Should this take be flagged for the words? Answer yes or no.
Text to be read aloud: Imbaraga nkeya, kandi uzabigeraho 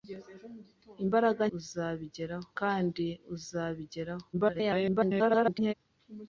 yes